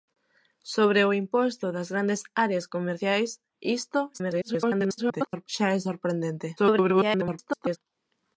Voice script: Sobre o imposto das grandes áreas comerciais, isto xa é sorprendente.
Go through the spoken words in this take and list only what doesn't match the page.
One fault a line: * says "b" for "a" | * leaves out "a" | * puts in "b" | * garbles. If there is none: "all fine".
* garbles
* garbles